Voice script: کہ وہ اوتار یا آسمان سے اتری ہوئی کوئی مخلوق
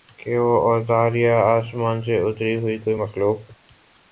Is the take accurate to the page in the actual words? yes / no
yes